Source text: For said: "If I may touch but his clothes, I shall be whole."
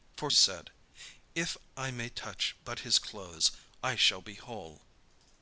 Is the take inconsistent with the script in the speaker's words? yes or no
no